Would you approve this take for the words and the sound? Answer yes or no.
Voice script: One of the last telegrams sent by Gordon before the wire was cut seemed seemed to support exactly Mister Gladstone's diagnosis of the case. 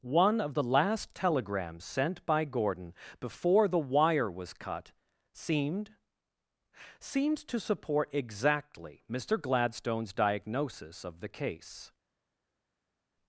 yes